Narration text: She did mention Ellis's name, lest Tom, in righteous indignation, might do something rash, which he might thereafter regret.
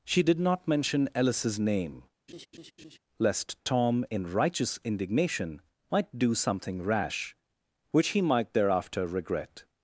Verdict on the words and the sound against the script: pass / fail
fail